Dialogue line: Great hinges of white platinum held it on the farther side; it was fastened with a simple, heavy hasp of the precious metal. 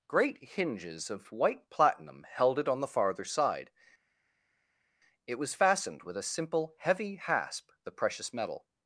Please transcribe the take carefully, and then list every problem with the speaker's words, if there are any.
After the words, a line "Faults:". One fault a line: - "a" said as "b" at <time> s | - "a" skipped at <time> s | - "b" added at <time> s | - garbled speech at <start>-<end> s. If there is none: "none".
Great hinges of white platinum held it on the farther side; it was fastened with a simple, heavy hasp the precious metal.
Faults:
- "of" skipped at 7.7 s